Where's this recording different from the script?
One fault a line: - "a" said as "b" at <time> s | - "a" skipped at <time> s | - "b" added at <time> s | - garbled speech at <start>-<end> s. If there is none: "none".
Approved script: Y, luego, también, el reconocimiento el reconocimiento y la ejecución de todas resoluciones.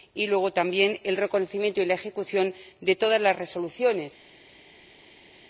- "el reconocimiento" skipped at 1.8 s
- "las" added at 3.2 s